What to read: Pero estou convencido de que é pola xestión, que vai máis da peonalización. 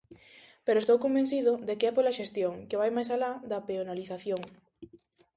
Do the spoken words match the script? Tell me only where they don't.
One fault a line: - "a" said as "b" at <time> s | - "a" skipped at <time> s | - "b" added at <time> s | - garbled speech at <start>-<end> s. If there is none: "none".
- "alá" added at 3.2 s